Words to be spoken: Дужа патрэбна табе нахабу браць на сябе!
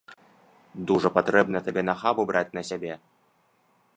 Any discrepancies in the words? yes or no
no